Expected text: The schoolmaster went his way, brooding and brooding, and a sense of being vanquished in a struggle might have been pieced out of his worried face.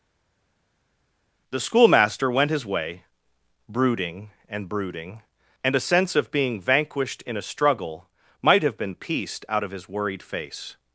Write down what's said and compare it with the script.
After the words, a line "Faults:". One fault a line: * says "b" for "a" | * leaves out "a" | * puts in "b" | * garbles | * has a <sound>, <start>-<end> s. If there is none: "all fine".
The schoolmaster went his way, brooding and brooding, and a sense of being vanquished in a struggle might have been pieced out of his worried face.
Faults:
all fine